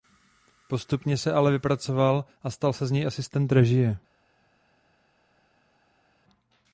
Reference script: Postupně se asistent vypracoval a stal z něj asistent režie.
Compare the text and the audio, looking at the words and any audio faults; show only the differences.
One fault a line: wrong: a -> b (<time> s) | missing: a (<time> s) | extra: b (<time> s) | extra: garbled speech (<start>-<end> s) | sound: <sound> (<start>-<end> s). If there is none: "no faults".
wrong: asistent -> ale (1.3 s)
extra: se (2.7 s)